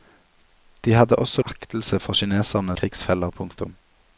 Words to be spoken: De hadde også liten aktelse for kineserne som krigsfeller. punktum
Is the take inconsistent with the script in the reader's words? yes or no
yes